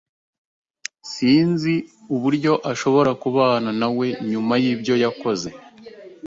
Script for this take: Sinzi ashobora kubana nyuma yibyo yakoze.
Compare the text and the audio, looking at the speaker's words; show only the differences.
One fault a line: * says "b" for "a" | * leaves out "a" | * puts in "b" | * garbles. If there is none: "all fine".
* puts in "uburyo"
* puts in "nawe"